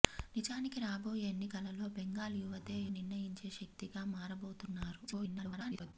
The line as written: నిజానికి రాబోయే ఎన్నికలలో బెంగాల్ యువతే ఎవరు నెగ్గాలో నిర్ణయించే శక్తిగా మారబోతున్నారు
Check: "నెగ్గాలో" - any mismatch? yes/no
yes